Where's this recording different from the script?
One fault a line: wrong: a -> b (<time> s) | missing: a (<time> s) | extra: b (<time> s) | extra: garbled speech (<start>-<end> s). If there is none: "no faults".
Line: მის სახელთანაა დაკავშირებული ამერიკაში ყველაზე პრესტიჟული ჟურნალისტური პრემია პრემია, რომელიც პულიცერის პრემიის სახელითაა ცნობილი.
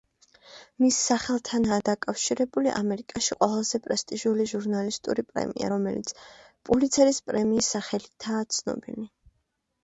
missing: პრემია (5.7 s)